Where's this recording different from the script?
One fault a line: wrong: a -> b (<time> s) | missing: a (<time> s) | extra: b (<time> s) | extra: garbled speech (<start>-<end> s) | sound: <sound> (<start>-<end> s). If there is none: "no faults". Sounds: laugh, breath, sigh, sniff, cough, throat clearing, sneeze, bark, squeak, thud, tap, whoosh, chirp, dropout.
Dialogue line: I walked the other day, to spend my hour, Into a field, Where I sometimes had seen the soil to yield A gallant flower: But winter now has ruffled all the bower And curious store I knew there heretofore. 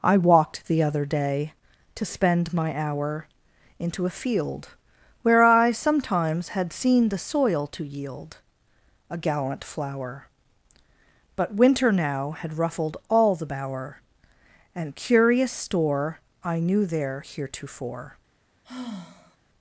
wrong: has -> had (12.4 s)
sound: sigh (18.6-19.4 s)